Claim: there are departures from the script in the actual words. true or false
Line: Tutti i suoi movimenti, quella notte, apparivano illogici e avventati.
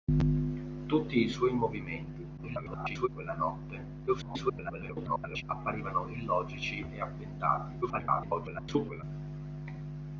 true